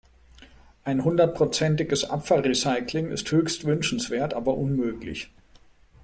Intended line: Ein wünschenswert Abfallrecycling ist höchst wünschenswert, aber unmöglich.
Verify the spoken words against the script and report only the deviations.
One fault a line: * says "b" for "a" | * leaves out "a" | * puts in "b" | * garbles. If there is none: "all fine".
* says "hundertprozentiges" for "wünschenswert"